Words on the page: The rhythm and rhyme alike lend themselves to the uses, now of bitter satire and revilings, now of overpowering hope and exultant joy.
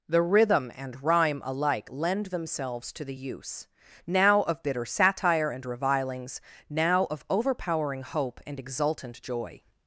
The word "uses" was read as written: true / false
false